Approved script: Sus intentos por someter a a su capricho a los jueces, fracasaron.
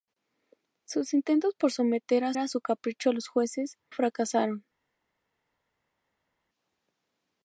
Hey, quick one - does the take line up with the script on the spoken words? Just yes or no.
yes